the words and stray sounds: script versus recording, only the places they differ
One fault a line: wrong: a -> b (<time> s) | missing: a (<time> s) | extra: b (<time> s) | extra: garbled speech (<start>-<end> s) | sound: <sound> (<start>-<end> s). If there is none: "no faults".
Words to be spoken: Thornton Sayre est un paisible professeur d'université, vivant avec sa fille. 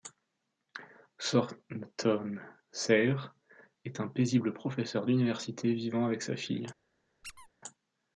sound: squeak (7.2-7.5 s)